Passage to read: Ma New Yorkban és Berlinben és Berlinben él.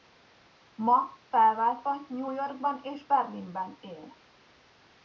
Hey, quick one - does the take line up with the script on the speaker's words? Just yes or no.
no